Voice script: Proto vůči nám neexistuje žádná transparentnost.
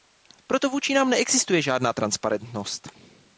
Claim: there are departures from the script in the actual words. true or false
false